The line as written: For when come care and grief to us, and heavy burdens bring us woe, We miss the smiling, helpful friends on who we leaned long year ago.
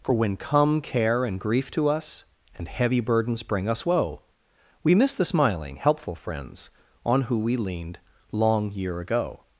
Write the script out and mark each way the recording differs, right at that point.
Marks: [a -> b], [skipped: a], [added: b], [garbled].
For when come care and grief to us, and heavy burdens bring us woe, We miss the smiling, helpful friends on who we leaned long year ago.